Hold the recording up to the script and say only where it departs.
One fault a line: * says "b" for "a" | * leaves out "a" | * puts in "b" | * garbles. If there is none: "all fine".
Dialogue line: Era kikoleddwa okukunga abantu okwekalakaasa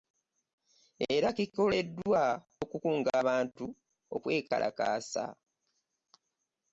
all fine